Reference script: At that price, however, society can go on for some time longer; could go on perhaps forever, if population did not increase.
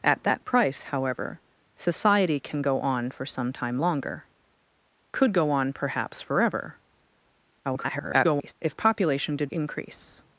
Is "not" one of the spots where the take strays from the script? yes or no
yes